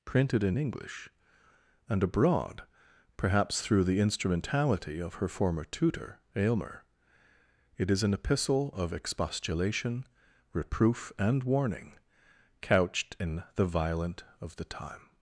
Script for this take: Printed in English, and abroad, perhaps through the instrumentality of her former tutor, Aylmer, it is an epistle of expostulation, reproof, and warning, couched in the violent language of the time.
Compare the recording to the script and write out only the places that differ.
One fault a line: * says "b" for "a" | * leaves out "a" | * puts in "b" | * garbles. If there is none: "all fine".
* leaves out "language"